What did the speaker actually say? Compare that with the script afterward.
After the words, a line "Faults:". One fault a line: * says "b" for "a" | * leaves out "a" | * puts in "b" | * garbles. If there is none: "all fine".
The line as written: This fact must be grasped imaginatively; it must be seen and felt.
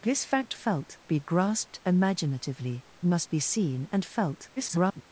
This fact felt be grasped imaginatively; must be seen and felt. [garbled]
Faults:
* says "felt" for "must"
* leaves out "it"
* garbles